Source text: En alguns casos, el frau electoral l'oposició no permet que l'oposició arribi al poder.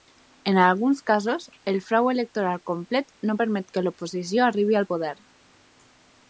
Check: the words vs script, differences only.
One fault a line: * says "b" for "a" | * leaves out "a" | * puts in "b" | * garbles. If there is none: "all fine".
* says "complet" for "l'oposició"